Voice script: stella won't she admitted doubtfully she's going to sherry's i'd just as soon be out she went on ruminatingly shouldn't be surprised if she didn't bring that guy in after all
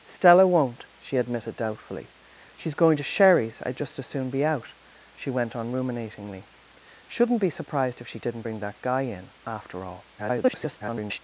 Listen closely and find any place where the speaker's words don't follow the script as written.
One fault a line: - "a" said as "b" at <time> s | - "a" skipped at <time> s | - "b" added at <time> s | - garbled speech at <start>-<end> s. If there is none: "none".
- garbled speech at 10.2-11.2 s